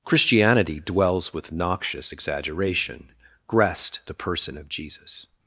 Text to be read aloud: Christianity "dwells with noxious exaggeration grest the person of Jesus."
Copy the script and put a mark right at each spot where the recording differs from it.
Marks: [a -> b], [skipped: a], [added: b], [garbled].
Christianity "dwells with noxious exaggeration grest the person of Jesus."